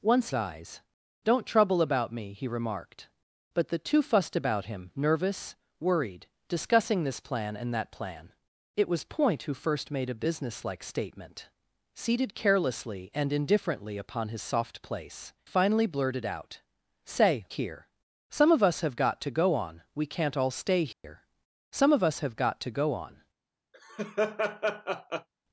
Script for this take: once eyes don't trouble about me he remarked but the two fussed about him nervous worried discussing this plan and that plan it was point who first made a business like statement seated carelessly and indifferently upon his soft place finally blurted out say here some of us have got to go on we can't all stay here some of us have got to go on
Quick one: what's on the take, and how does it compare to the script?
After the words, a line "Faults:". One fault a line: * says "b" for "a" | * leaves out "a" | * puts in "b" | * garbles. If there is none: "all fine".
once eyes don't trouble about me he remarked but the two fussed about him nervous worried discussing this plan and that plan it was point who first made a business like statement seated carelessly and indifferently upon his soft place finally blurted out say here some of us have got to go on we can't all stay here some of us have got to go on
Faults:
all fine